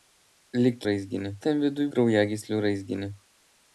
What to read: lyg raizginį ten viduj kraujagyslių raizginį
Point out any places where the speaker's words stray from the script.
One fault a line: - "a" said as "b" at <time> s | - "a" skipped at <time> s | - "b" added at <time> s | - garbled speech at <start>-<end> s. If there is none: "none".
none